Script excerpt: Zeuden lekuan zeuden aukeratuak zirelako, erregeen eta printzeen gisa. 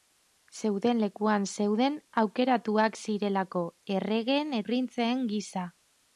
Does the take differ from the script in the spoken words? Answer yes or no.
yes